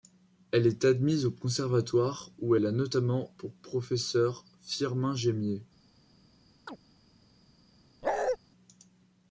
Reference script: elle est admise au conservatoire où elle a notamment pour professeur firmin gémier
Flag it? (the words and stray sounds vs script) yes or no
yes